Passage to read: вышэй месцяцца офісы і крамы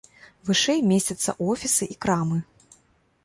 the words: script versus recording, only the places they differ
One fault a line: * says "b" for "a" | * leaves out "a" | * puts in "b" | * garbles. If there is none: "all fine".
all fine